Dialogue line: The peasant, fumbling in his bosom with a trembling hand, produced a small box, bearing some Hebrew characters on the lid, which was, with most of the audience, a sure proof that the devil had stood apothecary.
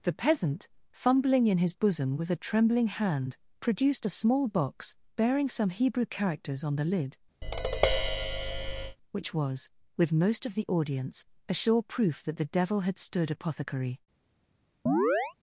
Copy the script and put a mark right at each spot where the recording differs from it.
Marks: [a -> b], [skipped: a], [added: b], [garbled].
The peasant, fumbling in his bosom with a trembling hand, produced a small box, bearing some Hebrew characters on the lid, which was, with most of the audience, a sure proof that the devil had stood apothecary.